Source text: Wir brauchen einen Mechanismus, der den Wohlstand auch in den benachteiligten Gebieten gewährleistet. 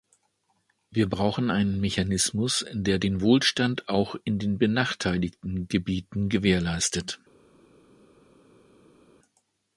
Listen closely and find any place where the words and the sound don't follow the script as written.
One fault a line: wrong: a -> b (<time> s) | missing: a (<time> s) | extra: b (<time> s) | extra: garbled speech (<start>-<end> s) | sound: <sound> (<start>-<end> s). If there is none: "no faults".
no faults